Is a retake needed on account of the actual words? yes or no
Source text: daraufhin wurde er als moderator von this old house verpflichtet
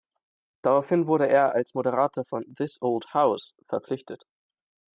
no